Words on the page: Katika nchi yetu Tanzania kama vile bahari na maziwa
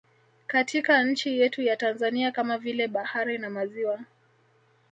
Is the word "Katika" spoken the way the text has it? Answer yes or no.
yes